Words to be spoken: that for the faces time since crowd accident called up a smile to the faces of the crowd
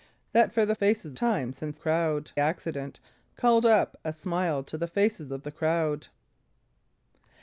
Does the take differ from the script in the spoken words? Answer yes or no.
no